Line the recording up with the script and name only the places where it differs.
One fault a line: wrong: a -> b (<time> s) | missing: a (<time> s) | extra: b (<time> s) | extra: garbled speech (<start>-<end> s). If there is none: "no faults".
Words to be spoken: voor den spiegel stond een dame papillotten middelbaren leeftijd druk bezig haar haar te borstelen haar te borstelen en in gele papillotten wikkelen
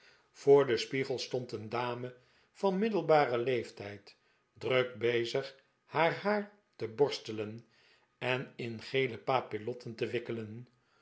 wrong: papillotten -> van (2.5 s)
missing: haar te borstelen (7.7 s)
extra: te (9.9 s)